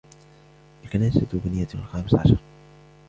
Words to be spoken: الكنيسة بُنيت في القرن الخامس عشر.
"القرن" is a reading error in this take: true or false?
true